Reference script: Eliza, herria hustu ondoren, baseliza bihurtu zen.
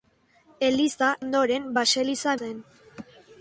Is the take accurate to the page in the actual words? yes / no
no